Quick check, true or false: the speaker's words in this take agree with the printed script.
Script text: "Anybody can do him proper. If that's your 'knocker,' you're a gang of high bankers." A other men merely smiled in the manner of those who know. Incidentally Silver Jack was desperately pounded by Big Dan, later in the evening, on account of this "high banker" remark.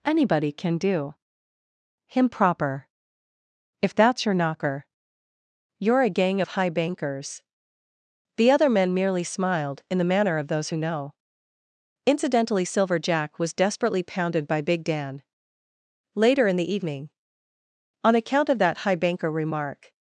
false